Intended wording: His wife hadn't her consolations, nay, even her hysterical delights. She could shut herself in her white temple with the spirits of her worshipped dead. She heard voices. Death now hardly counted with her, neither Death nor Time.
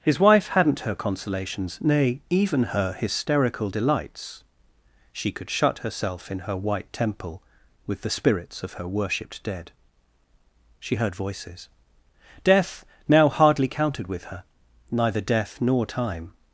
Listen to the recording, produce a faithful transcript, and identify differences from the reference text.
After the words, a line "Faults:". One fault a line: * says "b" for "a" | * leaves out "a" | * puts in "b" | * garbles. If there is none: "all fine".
His wife hadn't her consolations, nay, even her hysterical delights. She could shut herself in her white temple with the spirits of her worshipped dead. She heard voices. Death now hardly counted with her, neither Death nor Time.
Faults:
all fine